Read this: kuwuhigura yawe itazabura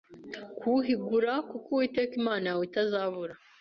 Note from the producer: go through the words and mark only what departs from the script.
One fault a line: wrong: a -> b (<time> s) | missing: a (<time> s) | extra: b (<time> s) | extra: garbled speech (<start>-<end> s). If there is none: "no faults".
extra: kuko uwiteka imana (1.5 s)